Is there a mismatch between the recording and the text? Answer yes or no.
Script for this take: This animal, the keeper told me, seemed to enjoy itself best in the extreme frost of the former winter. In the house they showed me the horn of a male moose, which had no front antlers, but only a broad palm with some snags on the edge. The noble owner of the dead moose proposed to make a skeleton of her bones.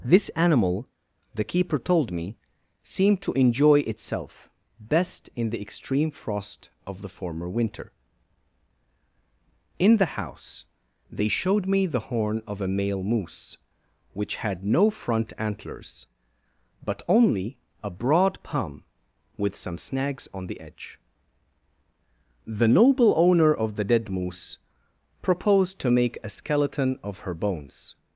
no